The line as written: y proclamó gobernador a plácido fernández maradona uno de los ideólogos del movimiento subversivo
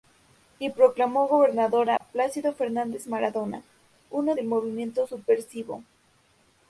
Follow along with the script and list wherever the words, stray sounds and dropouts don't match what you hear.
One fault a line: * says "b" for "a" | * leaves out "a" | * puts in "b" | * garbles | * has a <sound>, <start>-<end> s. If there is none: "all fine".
* has a dropout, 2.0-2.0 s
* leaves out "de los ideólogos"